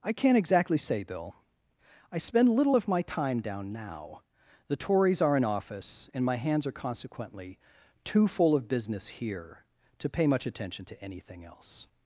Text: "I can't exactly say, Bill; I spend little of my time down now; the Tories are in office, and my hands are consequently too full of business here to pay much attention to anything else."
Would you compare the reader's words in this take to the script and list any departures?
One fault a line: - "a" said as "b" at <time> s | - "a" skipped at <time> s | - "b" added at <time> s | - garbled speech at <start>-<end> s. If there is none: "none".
none